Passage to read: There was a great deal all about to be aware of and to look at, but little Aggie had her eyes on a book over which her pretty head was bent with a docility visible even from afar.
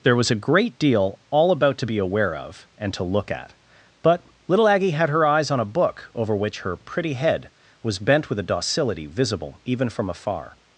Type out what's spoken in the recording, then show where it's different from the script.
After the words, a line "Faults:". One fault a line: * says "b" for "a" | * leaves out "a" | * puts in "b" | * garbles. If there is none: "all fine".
There was a great deal all about to be aware of and to look at, but little Aggie had her eyes on a book over which her pretty head was bent with a docility visible even from afar.
Faults:
all fine